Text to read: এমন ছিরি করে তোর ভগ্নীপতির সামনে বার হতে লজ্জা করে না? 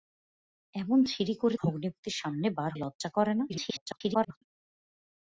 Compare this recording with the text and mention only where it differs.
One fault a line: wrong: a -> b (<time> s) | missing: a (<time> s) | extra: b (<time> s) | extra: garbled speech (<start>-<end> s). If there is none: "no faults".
missing: তোর (1.6 s)
missing: হতে (2.7 s)
extra: garbled speech (3.5-4.4 s)